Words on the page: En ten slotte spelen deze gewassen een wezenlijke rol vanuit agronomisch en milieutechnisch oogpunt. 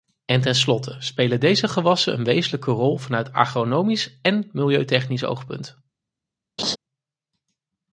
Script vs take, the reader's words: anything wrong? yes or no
no